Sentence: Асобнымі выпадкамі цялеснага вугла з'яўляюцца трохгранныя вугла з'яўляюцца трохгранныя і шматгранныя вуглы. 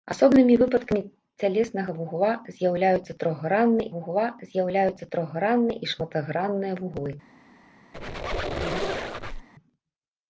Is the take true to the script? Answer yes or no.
yes